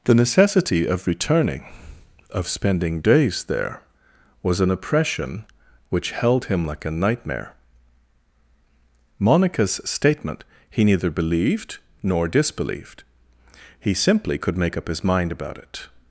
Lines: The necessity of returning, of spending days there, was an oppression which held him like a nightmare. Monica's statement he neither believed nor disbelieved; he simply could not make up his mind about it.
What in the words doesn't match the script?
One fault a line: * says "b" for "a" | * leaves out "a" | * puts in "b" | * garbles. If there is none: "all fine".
* leaves out "not"